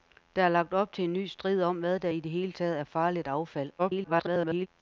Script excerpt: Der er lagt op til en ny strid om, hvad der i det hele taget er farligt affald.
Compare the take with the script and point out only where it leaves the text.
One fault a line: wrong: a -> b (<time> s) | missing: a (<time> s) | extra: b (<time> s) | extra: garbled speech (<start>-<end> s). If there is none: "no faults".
extra: garbled speech (3.8-4.7 s)